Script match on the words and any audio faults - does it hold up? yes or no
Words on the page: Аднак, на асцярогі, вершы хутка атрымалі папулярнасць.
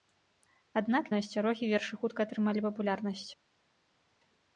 yes